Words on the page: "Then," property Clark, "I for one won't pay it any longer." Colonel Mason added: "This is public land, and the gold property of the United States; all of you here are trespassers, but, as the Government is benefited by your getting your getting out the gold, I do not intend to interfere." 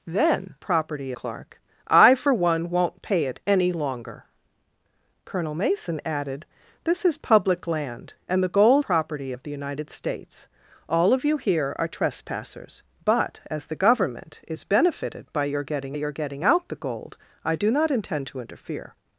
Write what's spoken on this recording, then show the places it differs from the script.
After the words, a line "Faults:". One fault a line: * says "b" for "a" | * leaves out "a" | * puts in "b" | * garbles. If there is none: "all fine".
"Then," property Clark, "I for one won't pay it any longer." Colonel Mason added: "This is public land, and the gold property of the United States; all of you here are trespassers, but, as the Government is benefited by your getting your getting out the gold, I do not intend to interfere."
Faults:
all fine